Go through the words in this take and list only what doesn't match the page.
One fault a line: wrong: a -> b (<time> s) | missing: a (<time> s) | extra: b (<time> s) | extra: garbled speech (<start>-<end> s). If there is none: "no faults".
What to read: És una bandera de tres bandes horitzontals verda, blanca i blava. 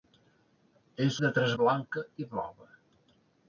missing: una bandera (1.2 s)
missing: bandes horitzontals verda (1.5 s)